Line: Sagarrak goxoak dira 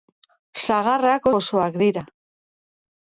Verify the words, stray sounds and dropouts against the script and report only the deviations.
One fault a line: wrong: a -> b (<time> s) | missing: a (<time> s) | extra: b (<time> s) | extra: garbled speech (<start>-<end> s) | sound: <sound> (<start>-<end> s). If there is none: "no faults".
no faults